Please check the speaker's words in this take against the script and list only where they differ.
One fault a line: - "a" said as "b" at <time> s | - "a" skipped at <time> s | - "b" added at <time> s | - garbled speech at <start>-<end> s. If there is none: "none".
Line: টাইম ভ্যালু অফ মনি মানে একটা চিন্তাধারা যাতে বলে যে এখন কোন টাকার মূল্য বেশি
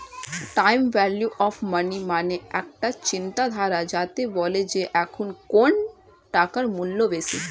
none